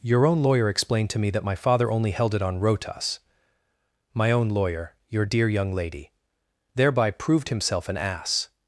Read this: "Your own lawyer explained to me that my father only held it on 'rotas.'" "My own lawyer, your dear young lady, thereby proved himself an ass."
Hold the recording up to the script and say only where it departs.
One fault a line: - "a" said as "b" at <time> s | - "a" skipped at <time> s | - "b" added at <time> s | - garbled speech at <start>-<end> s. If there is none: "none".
none